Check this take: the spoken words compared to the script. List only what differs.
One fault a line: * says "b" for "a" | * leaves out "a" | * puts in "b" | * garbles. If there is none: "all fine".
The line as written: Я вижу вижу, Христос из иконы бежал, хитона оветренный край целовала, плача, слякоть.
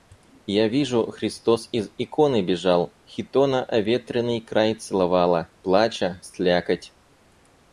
* leaves out "вижу"